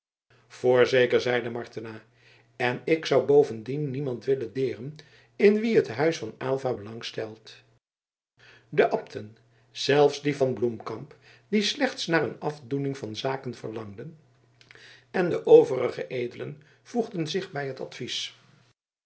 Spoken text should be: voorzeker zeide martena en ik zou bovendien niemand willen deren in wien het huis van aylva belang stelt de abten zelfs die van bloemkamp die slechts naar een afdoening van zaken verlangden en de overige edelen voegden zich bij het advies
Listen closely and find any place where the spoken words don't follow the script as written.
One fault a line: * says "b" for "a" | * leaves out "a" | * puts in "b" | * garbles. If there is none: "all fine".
all fine